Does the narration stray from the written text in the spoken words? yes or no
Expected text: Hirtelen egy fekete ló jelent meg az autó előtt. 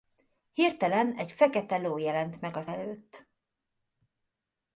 yes